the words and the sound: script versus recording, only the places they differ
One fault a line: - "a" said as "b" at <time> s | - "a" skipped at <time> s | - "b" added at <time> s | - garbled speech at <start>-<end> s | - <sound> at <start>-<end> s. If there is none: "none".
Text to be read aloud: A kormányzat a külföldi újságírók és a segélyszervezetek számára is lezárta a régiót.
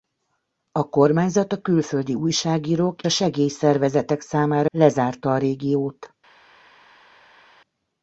- "és" skipped at 3.0 s
- "is" skipped at 4.7 s